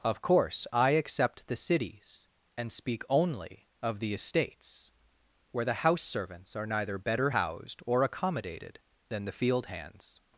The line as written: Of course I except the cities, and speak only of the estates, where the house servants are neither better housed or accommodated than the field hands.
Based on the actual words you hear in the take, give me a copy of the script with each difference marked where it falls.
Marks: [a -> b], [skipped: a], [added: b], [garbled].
Of course I except the cities, and speak only of the estates, where the house servants are neither better housed or accommodated than the field hands.